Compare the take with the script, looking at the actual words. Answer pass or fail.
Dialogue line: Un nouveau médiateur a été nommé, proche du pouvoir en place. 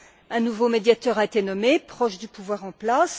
pass